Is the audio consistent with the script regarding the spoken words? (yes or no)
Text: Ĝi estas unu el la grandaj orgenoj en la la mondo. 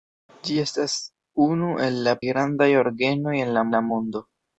yes